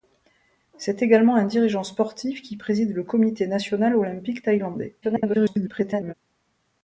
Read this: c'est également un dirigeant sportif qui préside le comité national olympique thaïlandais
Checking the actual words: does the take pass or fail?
fail